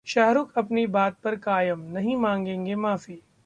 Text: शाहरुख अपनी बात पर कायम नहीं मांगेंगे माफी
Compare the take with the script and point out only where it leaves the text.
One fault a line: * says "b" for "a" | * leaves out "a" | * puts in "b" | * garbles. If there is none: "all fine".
all fine